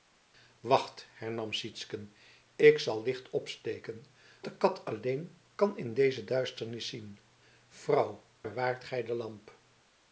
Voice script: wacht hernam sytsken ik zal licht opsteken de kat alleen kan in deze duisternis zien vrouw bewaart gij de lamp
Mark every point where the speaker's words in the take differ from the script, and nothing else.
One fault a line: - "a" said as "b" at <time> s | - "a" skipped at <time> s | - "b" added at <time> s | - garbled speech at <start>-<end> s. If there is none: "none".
none